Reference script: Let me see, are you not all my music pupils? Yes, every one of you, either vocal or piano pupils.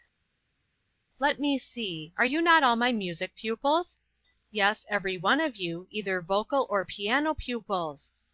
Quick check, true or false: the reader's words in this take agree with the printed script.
true